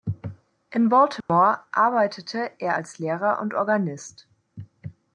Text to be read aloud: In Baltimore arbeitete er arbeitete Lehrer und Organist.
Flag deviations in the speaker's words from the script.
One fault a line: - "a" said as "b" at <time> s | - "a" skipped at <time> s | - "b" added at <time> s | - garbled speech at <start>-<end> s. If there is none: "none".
- "arbeitete" said as "als" at 2.7 s